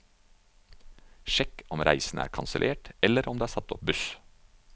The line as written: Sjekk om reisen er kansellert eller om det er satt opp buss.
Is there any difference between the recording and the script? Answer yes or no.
no